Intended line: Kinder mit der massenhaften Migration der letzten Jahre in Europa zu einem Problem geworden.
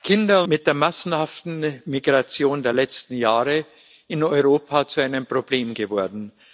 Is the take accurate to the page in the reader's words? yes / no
yes